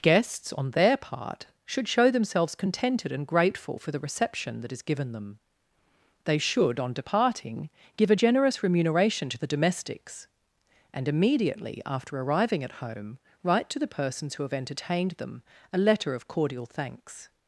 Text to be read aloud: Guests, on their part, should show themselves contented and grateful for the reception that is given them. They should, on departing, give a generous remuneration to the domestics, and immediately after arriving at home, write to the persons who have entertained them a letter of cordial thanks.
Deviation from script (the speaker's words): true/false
false